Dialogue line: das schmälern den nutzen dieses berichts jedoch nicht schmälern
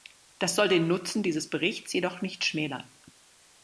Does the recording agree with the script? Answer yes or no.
no